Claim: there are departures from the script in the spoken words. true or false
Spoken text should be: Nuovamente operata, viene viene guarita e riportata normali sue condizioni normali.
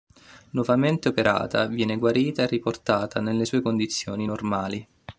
true